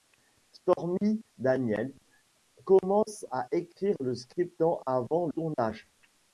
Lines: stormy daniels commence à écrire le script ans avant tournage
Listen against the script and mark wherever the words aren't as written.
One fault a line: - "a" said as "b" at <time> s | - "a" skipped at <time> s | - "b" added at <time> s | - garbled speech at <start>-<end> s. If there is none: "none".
none